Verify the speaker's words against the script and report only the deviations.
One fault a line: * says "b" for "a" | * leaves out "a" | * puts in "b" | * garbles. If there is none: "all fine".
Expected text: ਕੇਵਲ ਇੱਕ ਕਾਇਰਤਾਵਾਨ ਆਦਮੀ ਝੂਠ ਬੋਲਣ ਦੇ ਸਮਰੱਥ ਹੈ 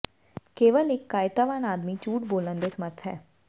all fine